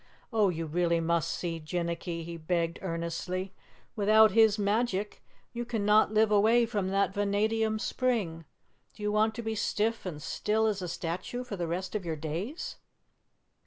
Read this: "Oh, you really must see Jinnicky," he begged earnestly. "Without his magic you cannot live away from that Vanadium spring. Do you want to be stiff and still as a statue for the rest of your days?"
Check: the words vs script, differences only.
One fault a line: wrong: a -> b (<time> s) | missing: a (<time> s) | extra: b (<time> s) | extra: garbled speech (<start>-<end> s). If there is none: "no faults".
no faults